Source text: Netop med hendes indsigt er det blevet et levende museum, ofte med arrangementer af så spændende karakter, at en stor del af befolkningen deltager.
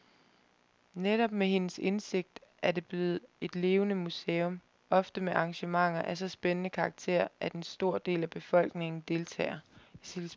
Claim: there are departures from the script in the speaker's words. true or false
false